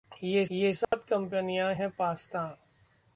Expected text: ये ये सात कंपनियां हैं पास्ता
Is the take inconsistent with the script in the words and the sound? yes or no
yes